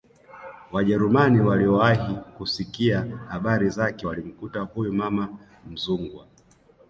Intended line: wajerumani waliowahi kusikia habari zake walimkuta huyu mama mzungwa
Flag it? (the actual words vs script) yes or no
no